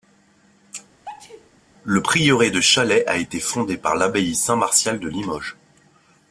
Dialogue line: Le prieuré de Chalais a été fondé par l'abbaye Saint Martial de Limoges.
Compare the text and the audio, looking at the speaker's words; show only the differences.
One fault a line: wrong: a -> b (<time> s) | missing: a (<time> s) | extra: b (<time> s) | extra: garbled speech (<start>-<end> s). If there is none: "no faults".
no faults